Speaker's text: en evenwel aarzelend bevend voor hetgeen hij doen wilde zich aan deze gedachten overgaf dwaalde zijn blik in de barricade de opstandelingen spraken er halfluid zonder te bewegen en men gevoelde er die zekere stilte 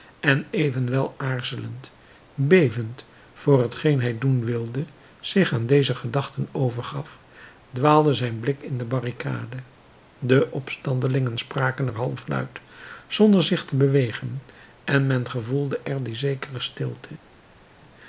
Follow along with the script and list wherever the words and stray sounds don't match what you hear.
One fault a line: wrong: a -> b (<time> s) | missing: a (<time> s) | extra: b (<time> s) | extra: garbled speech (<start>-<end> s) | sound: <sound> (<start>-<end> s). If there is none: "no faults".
extra: zich (13.4 s)